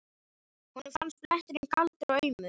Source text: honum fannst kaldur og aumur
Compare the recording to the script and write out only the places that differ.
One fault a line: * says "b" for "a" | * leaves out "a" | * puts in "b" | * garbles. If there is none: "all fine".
* puts in "bletturinn"